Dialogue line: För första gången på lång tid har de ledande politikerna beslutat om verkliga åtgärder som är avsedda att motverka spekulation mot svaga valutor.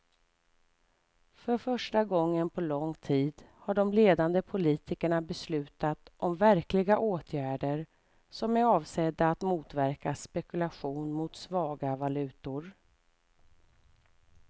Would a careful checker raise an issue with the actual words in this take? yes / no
no